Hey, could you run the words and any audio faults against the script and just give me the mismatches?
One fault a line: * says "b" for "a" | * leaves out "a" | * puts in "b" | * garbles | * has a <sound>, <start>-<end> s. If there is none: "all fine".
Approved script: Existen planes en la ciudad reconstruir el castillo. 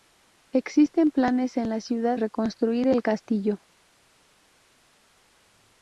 all fine